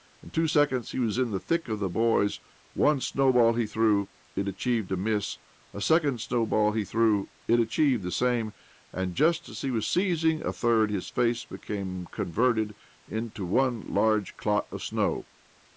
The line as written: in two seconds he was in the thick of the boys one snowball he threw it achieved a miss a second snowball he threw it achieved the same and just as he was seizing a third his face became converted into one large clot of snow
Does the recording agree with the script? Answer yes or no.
yes